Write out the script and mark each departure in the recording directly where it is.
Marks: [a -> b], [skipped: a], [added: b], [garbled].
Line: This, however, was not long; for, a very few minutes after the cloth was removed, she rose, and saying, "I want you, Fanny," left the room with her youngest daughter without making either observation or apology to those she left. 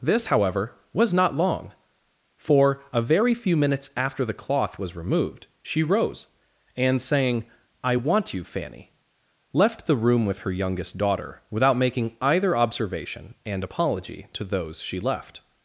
This, however, was not long; for, a very few minutes after the cloth was removed, she rose, and saying, "I want you, Fanny," left the room with her youngest daughter without making either observation [or -> and] apology to those she left.